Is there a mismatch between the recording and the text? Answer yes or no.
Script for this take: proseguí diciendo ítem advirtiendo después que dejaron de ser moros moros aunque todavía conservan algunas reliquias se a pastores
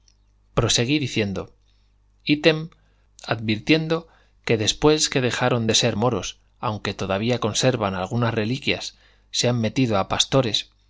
yes